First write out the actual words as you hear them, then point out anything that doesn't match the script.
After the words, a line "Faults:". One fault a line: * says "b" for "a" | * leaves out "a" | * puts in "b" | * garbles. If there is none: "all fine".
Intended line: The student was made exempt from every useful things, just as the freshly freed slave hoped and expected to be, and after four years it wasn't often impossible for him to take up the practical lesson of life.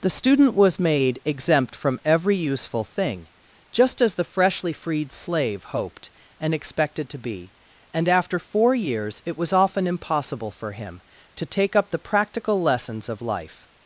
The student was made exempt from every useful thing, just as the freshly freed slave hoped and expected to be, and after four years it was often impossible for him to take up the practical lessons of life.
Faults:
* says "thing" for "things"
* says "was" for "wasn't"
* says "lessons" for "lesson"